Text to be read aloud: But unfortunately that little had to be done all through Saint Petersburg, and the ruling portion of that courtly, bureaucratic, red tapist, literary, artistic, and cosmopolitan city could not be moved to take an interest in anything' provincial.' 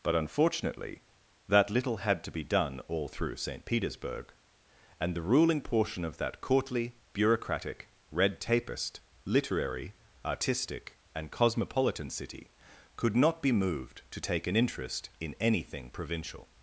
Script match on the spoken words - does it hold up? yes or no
yes